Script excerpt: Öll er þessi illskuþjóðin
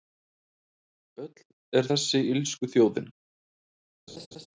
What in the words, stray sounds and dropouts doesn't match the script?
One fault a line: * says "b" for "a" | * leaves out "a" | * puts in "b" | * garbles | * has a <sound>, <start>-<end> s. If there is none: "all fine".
* has a laugh, 4.1-4.5 s